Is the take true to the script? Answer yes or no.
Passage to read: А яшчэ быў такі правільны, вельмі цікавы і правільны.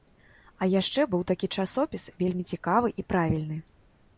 no